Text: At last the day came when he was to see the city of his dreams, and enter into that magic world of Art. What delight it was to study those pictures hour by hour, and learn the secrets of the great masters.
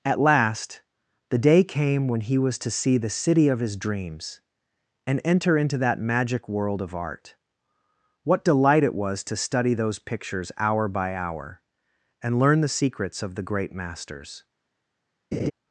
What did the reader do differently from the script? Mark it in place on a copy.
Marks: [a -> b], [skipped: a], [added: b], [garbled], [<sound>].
At last the day came when he was to see the city of his dreams, and enter into that magic world of Art. What delight it was to study those pictures hour by hour, and learn the secrets of the great masters. [laugh]